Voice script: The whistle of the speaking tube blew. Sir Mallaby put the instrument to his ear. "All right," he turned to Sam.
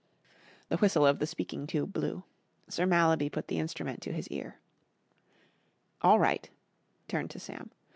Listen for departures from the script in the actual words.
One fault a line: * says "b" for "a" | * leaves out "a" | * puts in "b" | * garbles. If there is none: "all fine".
* leaves out "he"